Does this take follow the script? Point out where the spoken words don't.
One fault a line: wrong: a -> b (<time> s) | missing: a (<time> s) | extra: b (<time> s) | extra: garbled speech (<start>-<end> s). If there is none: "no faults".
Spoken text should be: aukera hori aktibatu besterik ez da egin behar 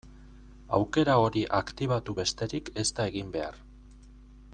no faults